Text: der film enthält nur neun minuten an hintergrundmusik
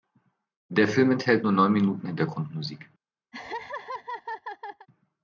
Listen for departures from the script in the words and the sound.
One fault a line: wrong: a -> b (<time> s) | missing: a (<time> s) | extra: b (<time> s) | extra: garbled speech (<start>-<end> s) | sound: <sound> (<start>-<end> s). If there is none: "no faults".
missing: an (2.1 s)
sound: laugh (3.3-4.9 s)